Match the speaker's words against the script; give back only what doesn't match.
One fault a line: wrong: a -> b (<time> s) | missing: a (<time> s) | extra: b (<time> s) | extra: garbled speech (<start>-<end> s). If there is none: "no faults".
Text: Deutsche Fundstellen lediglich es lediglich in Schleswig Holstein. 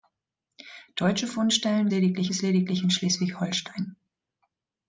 no faults